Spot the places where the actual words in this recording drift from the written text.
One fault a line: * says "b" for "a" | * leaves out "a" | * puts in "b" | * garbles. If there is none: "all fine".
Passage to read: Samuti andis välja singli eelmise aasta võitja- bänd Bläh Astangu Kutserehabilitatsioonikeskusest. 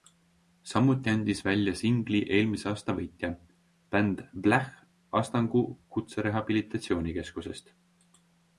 all fine